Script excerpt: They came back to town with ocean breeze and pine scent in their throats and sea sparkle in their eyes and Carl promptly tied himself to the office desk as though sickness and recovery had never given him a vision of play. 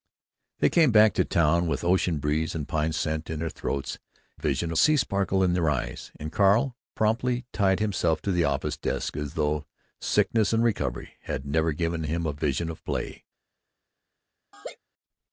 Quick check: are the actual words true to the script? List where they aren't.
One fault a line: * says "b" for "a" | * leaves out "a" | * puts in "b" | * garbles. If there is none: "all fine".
* says "vision" for "and"